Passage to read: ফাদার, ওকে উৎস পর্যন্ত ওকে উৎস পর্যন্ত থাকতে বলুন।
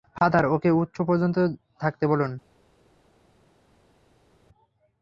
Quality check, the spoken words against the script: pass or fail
fail